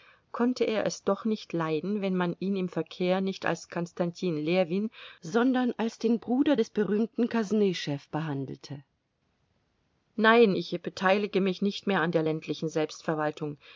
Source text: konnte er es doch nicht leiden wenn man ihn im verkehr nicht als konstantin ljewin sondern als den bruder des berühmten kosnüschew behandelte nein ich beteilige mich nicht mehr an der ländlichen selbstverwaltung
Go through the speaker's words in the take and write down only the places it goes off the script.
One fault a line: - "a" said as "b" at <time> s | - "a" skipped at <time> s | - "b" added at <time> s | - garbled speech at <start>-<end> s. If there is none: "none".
none